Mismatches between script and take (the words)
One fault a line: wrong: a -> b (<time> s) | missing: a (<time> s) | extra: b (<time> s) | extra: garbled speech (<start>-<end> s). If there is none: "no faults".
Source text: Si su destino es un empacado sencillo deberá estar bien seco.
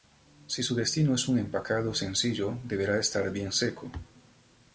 no faults